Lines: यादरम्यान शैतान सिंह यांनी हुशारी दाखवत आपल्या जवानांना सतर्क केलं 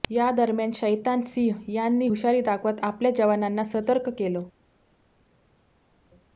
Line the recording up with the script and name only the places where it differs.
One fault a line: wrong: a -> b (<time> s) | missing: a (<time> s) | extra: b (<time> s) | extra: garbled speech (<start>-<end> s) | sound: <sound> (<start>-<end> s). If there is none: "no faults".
no faults